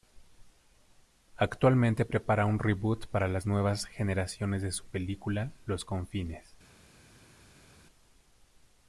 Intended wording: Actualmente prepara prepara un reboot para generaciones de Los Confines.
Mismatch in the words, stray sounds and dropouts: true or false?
true